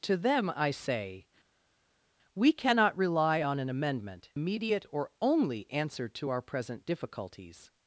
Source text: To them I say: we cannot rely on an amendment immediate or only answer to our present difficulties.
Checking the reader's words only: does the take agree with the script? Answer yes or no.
yes